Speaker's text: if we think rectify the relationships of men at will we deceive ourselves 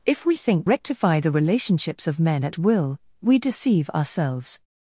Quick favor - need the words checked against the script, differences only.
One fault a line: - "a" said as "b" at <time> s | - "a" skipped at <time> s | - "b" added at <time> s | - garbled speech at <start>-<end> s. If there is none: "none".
none